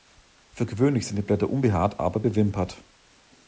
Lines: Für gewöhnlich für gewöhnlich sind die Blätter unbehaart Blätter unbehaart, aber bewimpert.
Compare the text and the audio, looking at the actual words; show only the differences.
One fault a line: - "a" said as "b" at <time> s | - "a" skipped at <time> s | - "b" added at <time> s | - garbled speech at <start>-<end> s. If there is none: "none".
- "für gewöhnlich" skipped at 1.1 s
- "Blätter unbehaart" skipped at 2.0 s